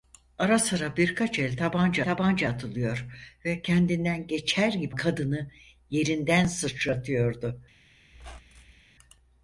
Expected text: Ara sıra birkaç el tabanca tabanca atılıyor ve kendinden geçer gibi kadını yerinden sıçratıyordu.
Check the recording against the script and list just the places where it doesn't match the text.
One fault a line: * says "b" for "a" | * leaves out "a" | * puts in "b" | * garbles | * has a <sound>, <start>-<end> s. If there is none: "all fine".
* has a squeak, 8.1-8.8 s